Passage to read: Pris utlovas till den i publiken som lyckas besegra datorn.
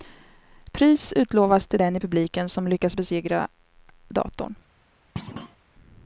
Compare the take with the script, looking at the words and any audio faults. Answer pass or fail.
fail